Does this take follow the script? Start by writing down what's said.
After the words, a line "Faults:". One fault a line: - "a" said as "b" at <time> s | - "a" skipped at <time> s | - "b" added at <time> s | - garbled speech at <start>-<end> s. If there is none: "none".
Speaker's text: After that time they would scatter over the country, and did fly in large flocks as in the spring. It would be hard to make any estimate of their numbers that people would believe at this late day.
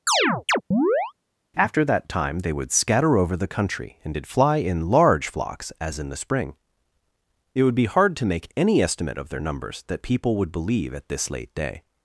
After that time they would scatter over the country, and did fly in large flocks as in the spring. It would be hard to make any estimate of their numbers that people would believe at this late day.
Faults:
none